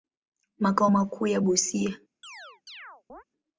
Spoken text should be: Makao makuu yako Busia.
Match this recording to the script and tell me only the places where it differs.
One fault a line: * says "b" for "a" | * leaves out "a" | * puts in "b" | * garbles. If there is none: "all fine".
all fine